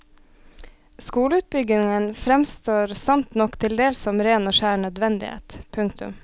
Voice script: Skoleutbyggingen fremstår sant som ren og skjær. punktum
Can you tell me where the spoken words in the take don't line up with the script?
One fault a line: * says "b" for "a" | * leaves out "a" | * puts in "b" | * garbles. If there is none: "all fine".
* puts in "nok til dels"
* puts in "nødvendighet"